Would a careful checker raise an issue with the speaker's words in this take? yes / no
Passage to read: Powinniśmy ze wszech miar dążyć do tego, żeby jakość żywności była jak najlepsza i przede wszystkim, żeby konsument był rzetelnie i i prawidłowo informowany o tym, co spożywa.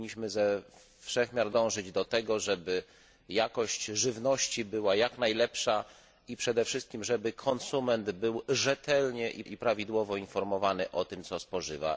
no